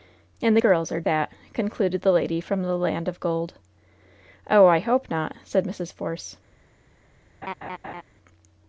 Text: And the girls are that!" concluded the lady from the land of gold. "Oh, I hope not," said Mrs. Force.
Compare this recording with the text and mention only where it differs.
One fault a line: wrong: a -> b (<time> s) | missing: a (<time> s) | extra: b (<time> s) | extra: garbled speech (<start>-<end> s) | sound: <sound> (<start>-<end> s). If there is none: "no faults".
sound: laugh (7.4-8.0 s)